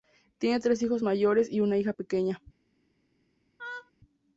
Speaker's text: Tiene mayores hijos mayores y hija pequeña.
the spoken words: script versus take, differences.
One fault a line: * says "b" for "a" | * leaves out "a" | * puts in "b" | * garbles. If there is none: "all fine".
* says "tres" for "mayores"
* puts in "una"